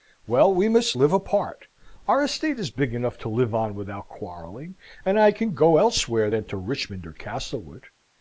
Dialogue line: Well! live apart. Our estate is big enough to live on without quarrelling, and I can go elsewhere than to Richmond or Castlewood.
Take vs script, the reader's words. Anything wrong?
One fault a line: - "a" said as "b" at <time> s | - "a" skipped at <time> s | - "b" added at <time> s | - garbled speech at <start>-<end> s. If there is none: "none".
- "we must" added at 0.5 s